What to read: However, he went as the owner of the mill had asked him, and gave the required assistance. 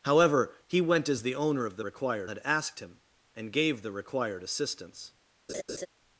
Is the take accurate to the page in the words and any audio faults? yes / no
no